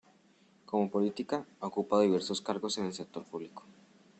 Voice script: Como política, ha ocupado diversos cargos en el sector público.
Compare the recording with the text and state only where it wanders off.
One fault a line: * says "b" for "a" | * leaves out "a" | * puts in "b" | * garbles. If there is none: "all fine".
all fine